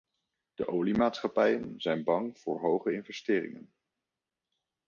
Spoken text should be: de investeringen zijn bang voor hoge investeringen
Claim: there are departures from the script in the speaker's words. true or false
true